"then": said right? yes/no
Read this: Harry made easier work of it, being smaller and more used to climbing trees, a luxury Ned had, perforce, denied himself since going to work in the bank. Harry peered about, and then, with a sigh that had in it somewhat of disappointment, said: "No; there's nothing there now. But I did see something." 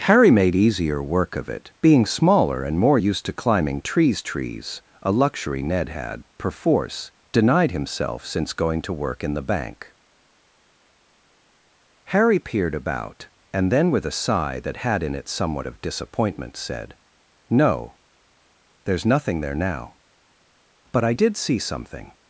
yes